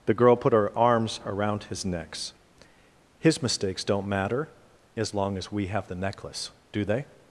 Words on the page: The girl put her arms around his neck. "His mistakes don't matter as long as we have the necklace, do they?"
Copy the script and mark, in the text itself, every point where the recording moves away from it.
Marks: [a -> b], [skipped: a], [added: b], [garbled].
The girl put her arms around his [neck. -> necks] "His mistakes don't matter as long as we have the necklace, do they?"